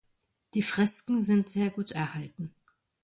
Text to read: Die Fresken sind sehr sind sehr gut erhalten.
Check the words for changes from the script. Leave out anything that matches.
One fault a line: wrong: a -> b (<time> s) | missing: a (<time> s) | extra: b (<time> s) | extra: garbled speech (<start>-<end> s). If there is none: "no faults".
missing: sind sehr (1.7 s)